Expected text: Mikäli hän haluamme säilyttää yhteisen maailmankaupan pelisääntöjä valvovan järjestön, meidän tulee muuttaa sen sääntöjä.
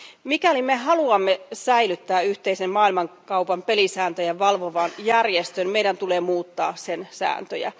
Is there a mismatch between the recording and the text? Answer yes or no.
yes